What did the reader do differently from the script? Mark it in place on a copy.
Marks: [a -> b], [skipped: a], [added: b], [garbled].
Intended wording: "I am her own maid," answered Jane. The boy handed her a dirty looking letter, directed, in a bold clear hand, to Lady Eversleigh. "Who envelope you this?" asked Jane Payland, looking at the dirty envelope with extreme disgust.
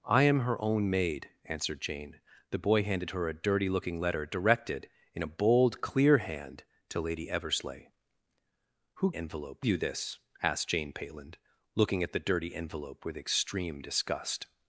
"I am her own maid," answered Jane. The boy handed her a dirty looking letter, directed, in a bold clear hand, to Lady Eversleigh. "Who envelope you this?" asked Jane Payland, looking at the dirty envelope with extreme disgust.